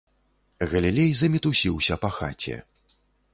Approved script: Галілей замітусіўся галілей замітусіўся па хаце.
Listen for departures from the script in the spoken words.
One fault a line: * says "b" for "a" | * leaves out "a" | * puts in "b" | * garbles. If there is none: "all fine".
* leaves out "галілей замітусіўся"